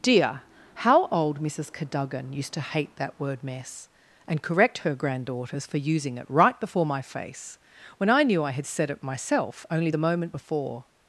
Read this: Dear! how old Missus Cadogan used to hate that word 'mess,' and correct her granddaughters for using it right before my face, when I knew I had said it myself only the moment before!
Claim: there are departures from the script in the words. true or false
false